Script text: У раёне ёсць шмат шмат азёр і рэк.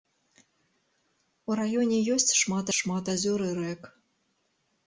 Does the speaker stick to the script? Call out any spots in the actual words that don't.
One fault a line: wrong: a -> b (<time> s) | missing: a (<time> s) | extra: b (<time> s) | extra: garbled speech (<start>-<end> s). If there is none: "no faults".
no faults